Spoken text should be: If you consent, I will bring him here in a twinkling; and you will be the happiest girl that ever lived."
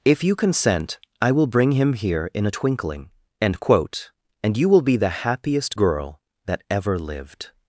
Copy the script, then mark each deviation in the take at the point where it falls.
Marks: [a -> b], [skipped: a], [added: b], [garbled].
If you consent, I will bring him here in a twinkling; [added: end quote] and you will be the happiest girl that ever lived."